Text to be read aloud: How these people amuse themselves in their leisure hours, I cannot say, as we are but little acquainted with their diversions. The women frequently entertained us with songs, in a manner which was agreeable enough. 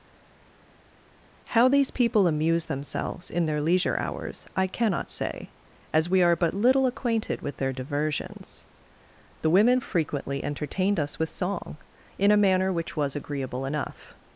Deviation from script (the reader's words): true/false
true